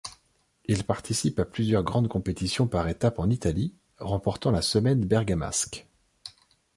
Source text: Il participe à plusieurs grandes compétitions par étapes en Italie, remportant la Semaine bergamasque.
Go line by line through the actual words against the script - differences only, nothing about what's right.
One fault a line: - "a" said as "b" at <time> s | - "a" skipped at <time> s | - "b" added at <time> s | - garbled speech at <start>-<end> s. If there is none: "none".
none